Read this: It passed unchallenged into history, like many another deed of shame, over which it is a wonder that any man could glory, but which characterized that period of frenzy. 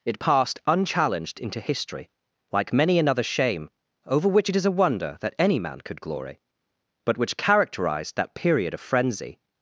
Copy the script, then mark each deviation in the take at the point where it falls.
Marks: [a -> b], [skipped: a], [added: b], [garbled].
It passed unchallenged into history, like many another [skipped: deed of] shame, over which it is a wonder that any man could glory, but which characterized that period of frenzy.